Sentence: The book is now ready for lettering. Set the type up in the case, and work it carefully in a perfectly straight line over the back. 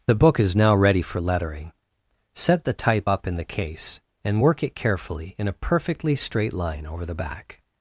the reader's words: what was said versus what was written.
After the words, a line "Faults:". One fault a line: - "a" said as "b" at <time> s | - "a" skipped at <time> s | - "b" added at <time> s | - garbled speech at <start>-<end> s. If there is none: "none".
The book is now ready for lettering. Set the type up in the case, and work it carefully in a perfectly straight line over the back.
Faults:
none